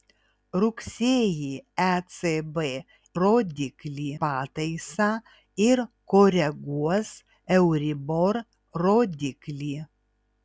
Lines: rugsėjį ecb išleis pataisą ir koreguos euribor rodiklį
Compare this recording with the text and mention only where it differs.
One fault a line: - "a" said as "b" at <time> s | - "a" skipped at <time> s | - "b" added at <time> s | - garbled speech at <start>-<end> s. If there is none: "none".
- "išleis" said as "rodiklį" at 3.2 s